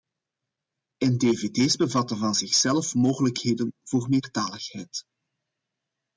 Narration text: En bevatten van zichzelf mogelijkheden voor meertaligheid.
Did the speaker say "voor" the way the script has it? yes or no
yes